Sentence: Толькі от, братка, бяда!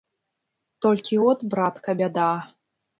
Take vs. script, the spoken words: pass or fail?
pass